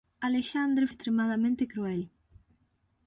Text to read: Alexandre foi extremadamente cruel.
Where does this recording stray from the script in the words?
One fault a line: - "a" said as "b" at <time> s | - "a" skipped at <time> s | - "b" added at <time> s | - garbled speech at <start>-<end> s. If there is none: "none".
- "foi" skipped at 0.8 s